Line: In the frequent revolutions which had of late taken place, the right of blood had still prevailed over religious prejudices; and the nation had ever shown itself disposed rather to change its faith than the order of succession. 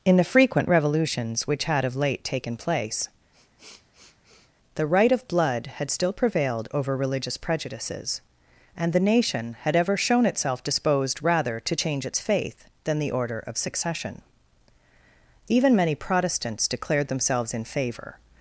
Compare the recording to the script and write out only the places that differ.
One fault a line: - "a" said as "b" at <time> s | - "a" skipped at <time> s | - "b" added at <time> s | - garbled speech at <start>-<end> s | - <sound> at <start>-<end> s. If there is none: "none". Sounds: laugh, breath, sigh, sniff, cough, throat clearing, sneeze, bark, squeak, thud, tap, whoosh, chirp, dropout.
- sniff at 3.3-4.5 s
- "Even many Protestants declared themselves in favor" added at 15.5 s